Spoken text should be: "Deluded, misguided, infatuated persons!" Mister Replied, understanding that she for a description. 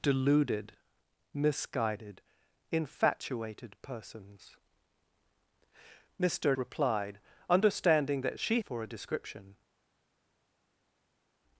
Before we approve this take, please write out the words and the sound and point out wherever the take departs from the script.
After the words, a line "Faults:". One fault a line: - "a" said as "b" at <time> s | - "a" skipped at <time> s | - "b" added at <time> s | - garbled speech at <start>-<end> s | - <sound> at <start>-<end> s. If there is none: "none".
"Deluded, misguided, infatuated persons!" Mister Replied, understanding that she for a description.
Faults:
none